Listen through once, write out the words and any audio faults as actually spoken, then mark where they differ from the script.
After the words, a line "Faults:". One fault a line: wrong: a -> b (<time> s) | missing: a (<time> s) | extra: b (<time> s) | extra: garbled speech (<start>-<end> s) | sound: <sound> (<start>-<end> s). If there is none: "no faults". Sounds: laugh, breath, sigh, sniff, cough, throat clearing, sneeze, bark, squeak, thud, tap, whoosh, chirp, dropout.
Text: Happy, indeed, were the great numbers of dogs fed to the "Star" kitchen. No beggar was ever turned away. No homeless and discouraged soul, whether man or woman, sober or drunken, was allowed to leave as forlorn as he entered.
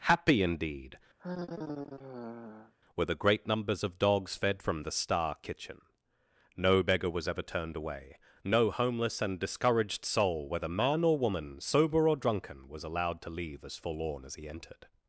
Happy, indeed, were the great numbers of dogs fed from the "Star" kitchen. No beggar was ever turned away. No homeless and discouraged soul, whether man or woman, sober or drunken, was allowed to leave as forlorn as he entered.
Faults:
sound: sigh (1.2-2.7 s)
wrong: to -> from (4.6 s)